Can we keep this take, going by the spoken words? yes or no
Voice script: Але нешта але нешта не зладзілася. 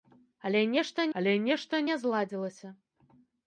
yes